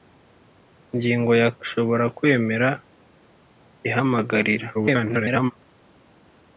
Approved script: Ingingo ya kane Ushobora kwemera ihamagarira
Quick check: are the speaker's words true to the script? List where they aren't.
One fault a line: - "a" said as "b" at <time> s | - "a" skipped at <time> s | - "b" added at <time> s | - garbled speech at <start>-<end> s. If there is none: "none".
- "kane" skipped at 1.5 s
- garbled speech at 4.7-5.5 s